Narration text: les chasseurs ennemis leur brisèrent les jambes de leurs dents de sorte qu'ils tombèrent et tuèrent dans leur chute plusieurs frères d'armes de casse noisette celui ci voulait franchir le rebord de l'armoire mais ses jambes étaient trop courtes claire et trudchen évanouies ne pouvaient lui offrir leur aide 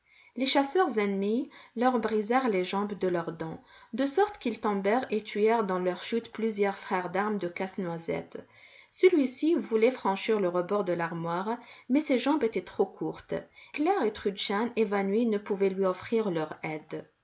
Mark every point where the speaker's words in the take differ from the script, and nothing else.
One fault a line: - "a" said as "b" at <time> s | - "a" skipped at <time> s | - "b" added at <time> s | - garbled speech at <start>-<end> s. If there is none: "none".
none